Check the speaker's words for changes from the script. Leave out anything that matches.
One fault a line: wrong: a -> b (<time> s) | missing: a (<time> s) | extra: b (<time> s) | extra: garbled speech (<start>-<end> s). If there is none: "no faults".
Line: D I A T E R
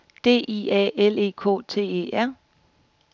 extra: L E K (1.0 s)